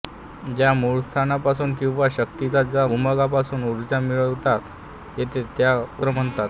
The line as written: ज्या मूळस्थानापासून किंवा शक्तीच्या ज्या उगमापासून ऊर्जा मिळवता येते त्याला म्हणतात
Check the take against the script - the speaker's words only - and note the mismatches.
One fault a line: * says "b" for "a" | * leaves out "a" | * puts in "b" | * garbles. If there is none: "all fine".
all fine